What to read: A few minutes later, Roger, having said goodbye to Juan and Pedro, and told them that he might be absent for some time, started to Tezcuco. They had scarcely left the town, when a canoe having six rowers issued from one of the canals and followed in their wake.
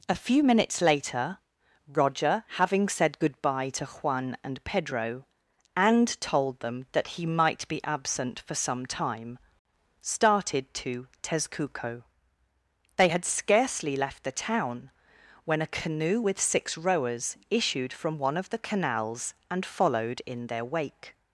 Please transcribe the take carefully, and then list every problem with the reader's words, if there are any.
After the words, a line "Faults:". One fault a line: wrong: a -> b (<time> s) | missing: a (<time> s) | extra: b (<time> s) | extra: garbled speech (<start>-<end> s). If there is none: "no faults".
A few minutes later, Roger, having said goodbye to Juan and Pedro, and told them that he might be absent for some time, started to Tezcuco. They had scarcely left the town, when a canoe with six rowers issued from one of the canals and followed in their wake.
Faults:
wrong: having -> with (16.2 s)